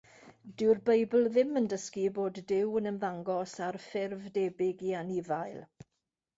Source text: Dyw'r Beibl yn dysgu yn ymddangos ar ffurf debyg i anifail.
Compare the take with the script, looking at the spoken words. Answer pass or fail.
fail